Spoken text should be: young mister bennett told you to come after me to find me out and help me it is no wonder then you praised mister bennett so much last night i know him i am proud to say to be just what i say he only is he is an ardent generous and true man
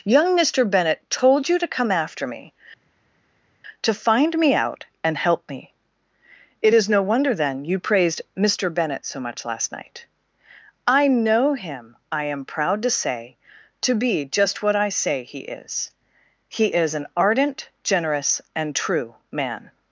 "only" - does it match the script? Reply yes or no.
no